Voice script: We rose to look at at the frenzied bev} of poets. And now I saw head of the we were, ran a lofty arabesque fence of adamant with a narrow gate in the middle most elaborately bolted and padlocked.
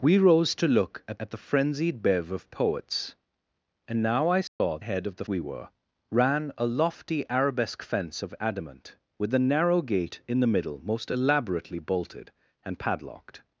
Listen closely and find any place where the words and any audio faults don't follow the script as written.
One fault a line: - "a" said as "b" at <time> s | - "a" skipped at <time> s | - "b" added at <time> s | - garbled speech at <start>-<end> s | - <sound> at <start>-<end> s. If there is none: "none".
- dropout at 4.5-4.6 s